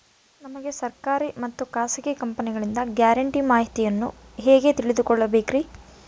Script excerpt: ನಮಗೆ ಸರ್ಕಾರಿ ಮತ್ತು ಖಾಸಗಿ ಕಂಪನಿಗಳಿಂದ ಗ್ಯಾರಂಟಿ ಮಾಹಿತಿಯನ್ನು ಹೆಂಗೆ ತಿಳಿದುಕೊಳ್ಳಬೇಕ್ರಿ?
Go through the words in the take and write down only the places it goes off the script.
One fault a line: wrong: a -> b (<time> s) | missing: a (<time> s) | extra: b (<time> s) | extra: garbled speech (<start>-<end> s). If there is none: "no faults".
no faults